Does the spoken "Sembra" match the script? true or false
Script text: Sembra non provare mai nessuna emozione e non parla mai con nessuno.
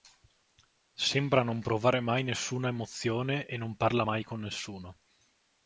true